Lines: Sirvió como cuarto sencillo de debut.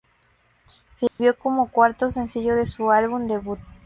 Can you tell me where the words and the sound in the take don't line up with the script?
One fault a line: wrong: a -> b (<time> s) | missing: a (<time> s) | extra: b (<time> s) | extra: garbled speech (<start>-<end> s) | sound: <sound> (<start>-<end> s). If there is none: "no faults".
sound: dropout (1.1-1.2 s)
extra: su álbum (2.7 s)